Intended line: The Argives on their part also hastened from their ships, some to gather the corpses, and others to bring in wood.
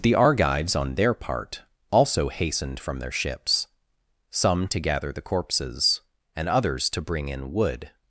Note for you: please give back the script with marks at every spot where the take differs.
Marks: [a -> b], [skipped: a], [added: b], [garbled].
The Argives on their part also hastened from their ships, some to gather the corpses, and others to bring in wood.